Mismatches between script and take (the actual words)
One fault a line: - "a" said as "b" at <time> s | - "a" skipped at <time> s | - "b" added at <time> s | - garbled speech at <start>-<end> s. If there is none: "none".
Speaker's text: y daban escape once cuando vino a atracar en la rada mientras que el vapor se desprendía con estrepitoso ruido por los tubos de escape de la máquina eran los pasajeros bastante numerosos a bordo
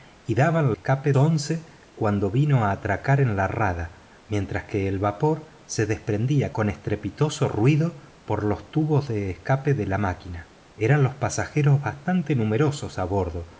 none